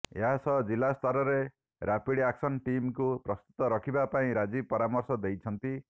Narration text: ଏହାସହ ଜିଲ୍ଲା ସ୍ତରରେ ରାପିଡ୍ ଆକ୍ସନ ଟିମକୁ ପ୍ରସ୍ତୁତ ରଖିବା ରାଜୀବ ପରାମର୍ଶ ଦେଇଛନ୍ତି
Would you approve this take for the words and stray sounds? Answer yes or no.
no